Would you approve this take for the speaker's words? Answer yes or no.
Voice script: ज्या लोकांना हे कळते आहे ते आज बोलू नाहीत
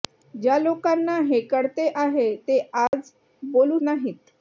yes